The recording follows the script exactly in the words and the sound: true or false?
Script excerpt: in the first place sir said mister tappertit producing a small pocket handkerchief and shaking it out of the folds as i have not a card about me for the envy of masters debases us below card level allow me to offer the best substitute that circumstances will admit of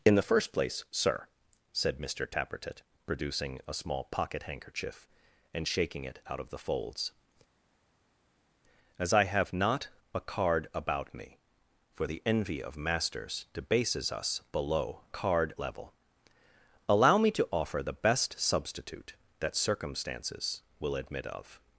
true